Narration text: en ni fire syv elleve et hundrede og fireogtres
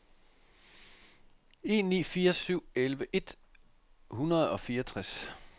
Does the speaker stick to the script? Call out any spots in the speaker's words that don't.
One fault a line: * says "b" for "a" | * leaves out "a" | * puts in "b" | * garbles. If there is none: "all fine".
all fine